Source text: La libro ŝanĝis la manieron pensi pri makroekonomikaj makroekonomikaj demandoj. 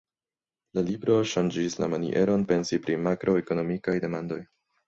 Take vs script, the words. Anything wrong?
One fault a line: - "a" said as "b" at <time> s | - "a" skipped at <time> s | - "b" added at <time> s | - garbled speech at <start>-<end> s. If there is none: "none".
- "makroekonomikaj" skipped at 4.0 s